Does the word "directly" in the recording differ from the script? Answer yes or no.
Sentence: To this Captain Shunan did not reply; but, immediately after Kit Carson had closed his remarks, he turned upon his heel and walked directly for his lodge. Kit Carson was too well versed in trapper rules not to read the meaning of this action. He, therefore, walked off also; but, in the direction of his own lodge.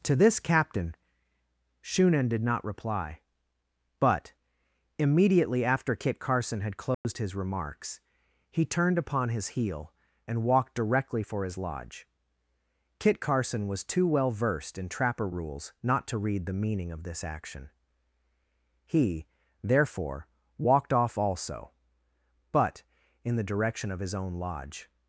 no